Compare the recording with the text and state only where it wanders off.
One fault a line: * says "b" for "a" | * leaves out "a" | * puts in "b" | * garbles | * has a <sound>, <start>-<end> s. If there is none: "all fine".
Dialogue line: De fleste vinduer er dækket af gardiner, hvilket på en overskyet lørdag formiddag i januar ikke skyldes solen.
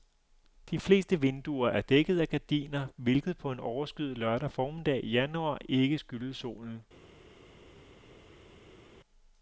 all fine